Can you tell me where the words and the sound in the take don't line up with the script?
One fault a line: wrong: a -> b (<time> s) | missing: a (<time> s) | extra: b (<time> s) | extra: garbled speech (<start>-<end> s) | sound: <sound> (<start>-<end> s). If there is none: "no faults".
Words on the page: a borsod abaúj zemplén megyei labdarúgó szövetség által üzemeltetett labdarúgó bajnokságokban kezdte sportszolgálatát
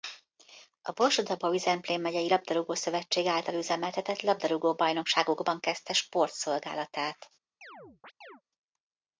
sound: chirp (7.6-8.4 s)